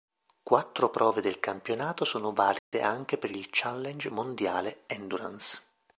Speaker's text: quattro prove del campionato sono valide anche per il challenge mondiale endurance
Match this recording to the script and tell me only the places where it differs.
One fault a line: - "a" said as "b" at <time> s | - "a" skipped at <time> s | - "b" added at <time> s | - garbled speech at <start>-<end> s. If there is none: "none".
none